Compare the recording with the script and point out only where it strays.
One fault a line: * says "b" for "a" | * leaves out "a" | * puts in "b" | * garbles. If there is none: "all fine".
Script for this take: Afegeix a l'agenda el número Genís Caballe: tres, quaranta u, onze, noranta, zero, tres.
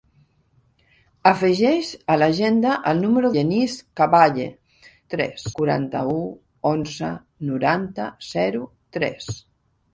all fine